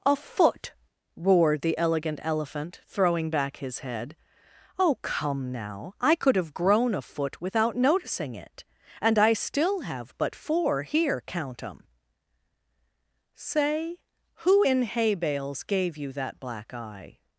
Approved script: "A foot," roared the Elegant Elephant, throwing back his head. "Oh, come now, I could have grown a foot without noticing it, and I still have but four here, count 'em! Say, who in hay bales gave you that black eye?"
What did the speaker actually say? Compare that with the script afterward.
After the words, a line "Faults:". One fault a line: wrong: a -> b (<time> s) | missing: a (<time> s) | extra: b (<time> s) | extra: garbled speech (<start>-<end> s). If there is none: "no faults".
"A foot," roared the Elegant Elephant, throwing back his head. "Oh, come now, I could have grown a foot without noticing it, and I still have but four here, count 'em! Say, who in hay bales gave you that black eye?"
Faults:
no faults